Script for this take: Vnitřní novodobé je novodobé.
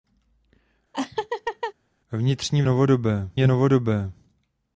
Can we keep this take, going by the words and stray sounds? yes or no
no